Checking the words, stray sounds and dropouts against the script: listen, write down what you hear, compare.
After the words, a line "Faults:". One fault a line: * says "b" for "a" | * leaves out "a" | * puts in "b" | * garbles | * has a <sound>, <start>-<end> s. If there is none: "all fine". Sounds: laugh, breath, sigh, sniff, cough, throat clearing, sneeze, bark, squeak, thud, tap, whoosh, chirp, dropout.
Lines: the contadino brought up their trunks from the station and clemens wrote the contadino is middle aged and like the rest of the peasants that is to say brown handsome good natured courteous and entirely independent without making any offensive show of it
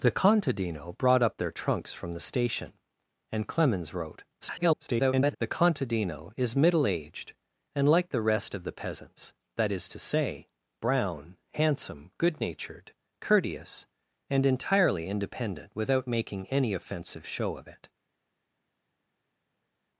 the contadino brought up their trunks from the station and clemens wrote [garbled] the contadino is middle aged and like the rest of the peasants that is to say brown handsome good natured courteous and entirely independent without making any offensive show of it
Faults:
* garbles